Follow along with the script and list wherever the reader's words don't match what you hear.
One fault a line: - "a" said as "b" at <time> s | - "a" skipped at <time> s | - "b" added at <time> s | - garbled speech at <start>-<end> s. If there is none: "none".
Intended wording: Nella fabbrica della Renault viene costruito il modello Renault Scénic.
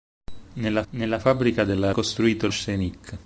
- "nella" added at 0.9 s
- "Renault viene" skipped at 1.9 s
- "modello Renault" skipped at 2.5 s